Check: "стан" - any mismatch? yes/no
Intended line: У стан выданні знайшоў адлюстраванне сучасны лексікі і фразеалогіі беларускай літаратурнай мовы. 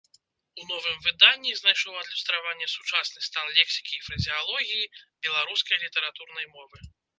yes